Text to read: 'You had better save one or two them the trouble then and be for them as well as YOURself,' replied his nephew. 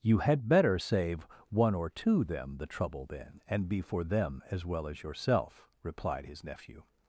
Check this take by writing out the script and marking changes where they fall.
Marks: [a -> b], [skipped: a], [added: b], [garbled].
'You had better save one or two them the trouble then and be for them as well as YOURself,' replied his nephew.